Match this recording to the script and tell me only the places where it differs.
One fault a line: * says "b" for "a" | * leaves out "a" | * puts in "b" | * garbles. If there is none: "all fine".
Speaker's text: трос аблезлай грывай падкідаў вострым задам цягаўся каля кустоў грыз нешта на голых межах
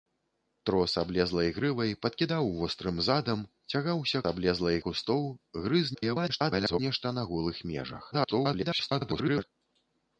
* says "аблезлай" for "каля"
* garbles
* garbles